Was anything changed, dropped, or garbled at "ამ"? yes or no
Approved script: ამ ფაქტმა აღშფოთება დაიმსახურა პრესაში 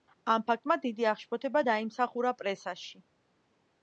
no